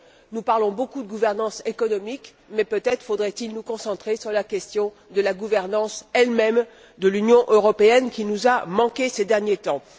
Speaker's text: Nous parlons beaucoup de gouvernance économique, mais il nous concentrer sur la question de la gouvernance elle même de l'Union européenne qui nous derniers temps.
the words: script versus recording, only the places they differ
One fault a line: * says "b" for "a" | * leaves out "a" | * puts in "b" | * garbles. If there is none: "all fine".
* puts in "peut être faudrait"
* puts in "a manqué ces"